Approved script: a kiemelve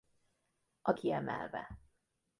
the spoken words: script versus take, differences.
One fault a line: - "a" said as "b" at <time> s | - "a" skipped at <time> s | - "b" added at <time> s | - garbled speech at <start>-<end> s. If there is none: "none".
none